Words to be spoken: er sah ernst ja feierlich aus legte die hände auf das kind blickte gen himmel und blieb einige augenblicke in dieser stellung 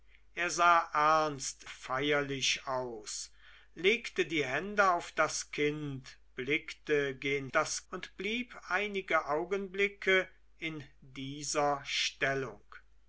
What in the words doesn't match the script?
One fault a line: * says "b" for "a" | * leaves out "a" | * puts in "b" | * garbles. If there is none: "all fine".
* leaves out "ja"
* says "das" for "himmel"